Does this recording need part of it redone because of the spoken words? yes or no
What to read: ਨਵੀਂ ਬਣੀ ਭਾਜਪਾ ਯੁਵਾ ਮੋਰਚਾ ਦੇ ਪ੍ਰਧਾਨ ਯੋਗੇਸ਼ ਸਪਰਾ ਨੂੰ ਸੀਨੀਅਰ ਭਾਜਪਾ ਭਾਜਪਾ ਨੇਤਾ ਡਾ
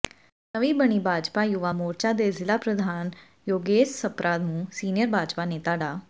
yes